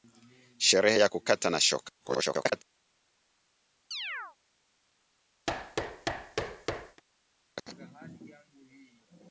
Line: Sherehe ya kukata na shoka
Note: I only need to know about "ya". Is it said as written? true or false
true